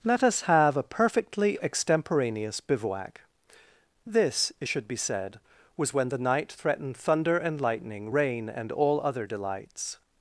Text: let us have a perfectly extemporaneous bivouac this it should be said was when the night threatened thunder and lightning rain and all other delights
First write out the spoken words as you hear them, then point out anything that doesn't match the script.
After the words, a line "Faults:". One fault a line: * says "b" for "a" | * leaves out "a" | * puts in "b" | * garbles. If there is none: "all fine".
let us have a perfectly extemporaneous bivouac this it should be said was when the night threatened thunder and lightning rain and all other delights
Faults:
all fine